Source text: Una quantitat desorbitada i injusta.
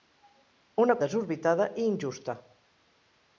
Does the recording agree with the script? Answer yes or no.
no